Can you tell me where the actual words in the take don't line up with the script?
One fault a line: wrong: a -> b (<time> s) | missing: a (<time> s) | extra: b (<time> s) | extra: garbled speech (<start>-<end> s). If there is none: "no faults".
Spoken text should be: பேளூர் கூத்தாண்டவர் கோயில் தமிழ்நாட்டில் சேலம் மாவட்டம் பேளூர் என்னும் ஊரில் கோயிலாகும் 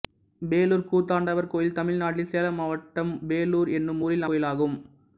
no faults